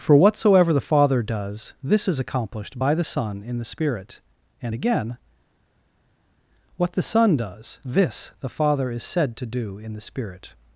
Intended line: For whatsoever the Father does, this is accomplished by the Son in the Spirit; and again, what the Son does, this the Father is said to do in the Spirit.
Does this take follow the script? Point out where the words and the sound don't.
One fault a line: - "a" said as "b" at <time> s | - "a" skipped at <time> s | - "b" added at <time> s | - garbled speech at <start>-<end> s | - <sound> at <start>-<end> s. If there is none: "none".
none